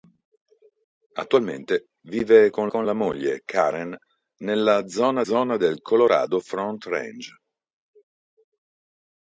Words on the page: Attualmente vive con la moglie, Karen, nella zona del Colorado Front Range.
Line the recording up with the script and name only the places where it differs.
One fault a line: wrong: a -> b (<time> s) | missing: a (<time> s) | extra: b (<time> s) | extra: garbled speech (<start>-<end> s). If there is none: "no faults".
extra: con (2.7 s)
extra: zona (5.2 s)